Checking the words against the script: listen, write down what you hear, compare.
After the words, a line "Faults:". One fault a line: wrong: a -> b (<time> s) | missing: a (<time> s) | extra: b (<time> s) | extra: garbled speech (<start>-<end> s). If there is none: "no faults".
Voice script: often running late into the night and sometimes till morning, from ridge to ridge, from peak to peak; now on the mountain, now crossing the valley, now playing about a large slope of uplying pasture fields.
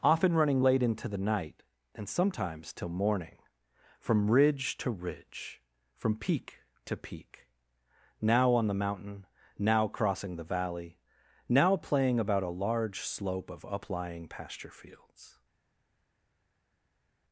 often running late into the night and sometimes till morning, from ridge to ridge, from peak to peak; now on the mountain, now crossing the valley, now playing about a large slope of uplying pasture fields.
Faults:
no faults